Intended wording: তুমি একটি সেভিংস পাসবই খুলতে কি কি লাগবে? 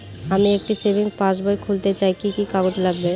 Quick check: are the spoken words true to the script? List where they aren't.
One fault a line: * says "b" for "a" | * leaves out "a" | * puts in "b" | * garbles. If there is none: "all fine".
* says "আমি" for "তুমি"
* puts in "চাই"
* puts in "কাগজ"